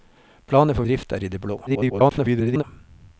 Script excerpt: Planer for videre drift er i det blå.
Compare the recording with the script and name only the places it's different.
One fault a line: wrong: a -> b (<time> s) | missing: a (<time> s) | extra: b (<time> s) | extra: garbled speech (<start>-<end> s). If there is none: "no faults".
missing: videre (0.9 s)
extra: garbled speech (1.7-2.6 s)